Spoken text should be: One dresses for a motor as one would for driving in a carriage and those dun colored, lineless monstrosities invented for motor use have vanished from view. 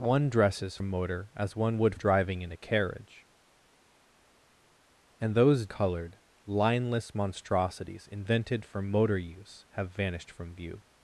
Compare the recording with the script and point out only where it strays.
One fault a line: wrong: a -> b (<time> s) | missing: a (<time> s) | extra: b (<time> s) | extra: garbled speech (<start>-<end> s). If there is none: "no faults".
missing: for (0.8 s)
missing: for (1.9 s)
missing: dun (5.7 s)